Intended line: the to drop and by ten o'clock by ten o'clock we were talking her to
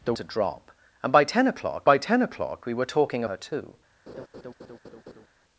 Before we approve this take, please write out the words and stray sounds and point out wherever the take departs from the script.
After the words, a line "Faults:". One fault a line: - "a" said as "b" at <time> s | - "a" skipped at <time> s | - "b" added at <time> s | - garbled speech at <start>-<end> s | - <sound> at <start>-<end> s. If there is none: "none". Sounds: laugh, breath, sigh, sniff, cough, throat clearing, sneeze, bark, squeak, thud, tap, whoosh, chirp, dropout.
the to drop and by ten o'clock by ten o'clock we were talking her to
Faults:
- laugh at 4.1-5.3 s